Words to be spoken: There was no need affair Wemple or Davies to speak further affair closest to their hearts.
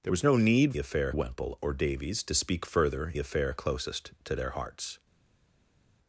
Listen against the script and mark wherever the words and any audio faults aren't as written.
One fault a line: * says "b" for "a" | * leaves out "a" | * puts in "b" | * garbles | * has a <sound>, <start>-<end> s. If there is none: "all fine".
all fine